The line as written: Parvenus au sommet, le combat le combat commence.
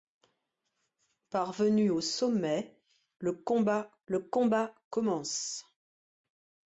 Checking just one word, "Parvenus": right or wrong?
right